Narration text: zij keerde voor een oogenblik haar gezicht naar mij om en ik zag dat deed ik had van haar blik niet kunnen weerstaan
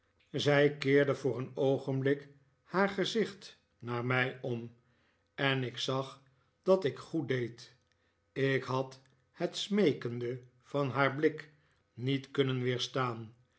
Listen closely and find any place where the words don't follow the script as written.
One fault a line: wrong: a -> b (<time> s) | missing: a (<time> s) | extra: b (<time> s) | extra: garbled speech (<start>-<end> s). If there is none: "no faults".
extra: ik goed (6.8 s)
extra: het smeekende (9.3 s)